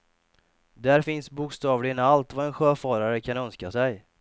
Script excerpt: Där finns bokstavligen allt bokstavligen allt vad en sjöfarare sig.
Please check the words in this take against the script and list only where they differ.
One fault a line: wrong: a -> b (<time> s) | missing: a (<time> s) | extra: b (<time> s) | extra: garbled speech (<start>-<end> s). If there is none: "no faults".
missing: bokstavligen allt (2.3 s)
extra: kan önska (3.2 s)